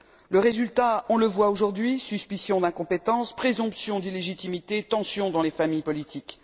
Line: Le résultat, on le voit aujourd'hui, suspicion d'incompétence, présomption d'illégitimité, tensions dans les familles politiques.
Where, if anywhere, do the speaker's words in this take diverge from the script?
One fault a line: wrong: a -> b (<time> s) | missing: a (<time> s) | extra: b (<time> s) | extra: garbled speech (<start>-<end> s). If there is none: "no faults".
no faults